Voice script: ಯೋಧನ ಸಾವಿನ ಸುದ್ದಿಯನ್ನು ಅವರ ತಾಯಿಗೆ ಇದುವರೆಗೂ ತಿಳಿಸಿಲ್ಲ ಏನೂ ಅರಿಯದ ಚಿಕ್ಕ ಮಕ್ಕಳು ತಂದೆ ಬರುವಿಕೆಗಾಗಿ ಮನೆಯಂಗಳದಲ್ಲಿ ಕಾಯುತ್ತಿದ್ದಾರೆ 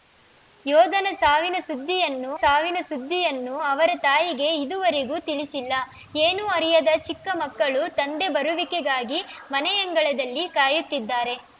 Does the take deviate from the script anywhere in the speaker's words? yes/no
yes